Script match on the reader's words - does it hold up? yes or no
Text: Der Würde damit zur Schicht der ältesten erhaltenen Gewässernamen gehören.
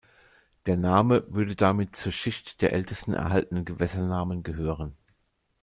no